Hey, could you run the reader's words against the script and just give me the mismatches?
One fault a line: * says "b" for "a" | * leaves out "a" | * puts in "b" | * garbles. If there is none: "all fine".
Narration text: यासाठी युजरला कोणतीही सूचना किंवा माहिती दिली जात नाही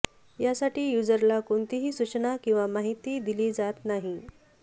all fine